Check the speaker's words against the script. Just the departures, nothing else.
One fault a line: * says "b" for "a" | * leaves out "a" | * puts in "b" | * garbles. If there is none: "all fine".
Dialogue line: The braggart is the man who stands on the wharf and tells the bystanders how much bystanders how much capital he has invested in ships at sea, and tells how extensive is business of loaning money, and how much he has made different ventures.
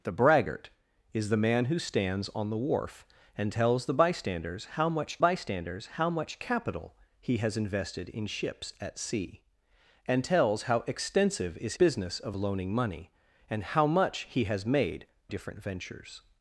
all fine